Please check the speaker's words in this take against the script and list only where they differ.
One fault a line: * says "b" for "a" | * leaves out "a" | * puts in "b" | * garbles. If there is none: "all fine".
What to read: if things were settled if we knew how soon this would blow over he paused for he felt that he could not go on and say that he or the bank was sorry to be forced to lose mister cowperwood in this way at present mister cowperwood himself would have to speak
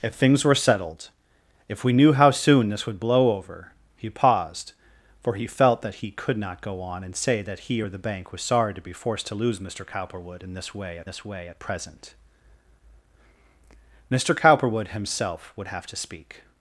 * puts in "this way at"